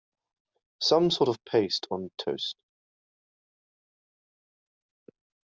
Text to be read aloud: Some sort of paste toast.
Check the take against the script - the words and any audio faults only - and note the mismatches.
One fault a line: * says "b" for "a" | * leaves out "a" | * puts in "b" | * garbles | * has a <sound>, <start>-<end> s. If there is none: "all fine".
* puts in "on"